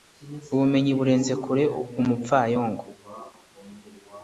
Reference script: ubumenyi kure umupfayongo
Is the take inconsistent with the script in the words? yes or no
yes